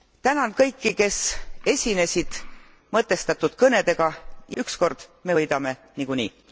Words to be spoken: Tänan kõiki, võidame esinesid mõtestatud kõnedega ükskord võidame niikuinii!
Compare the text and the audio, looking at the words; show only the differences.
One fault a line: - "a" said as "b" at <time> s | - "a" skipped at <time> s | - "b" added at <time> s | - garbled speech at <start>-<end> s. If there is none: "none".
- "võidame" said as "kes" at 0.9 s
- "me" added at 5.2 s